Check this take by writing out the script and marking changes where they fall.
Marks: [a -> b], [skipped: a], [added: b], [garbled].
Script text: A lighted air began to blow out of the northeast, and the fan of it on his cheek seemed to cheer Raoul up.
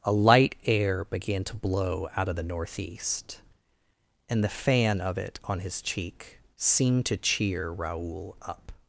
A [lighted -> light] air began to blow out of the northeast, and the fan of it on his cheek seemed to cheer Raoul up.